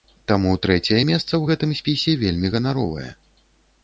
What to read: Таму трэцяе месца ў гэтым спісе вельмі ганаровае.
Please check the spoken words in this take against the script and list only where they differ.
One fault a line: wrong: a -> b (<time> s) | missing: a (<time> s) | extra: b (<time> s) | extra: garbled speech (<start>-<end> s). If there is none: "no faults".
no faults